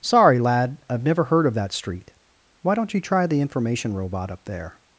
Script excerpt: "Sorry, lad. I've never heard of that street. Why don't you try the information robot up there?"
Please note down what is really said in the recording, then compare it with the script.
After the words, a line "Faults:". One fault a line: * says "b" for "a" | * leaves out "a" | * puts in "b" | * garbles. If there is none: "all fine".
"Sorry, lad. I've never heard of that street. Why don't you try the information robot up there?"
Faults:
all fine